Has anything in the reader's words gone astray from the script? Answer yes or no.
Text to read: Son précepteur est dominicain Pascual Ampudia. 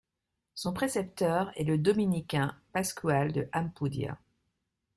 yes